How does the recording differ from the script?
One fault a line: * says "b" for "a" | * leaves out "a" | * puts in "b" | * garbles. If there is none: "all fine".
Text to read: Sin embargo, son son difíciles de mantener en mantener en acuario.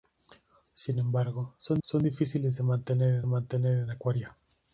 all fine